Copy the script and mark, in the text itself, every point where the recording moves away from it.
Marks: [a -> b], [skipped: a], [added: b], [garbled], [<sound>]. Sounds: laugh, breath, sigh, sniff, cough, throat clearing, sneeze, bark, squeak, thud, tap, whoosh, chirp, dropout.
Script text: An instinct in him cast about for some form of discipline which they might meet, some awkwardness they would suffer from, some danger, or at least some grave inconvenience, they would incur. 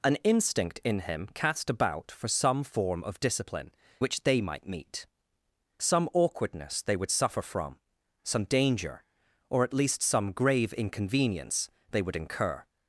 An instinct in him cast about for some form of discipline which they might meet, some awkwardness they would suffer from, some danger, or at least some grave inconvenience, they would incur.